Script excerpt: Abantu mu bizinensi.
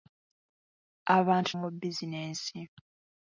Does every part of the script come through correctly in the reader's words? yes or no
yes